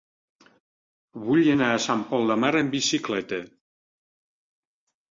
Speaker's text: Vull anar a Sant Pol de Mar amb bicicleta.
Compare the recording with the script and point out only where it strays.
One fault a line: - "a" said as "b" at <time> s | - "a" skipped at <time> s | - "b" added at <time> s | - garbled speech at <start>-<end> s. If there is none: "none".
none